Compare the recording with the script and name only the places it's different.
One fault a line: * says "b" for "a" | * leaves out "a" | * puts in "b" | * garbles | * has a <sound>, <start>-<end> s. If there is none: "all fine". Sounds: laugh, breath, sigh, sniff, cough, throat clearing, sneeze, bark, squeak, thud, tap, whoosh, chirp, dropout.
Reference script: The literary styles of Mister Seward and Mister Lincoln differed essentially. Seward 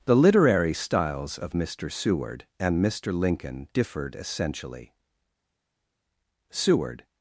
all fine